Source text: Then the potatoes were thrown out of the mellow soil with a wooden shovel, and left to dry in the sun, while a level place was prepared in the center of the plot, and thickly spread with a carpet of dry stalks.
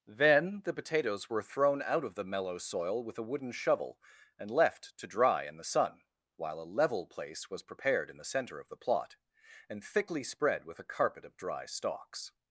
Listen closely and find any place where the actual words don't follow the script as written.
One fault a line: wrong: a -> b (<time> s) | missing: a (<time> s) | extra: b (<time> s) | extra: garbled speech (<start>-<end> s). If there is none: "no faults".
no faults